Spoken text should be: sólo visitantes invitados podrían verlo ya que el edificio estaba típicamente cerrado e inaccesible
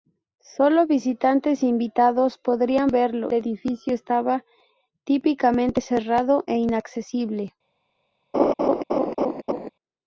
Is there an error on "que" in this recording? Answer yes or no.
yes